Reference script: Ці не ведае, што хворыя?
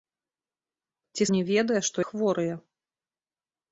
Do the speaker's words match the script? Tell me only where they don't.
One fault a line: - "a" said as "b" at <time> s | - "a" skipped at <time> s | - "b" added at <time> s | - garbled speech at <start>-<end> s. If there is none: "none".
none